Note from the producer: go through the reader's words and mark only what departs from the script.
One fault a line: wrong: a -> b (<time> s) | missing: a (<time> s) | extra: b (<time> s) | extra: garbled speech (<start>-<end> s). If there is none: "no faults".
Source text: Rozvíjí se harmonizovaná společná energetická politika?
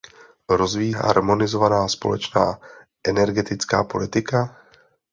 missing: se (0.9 s)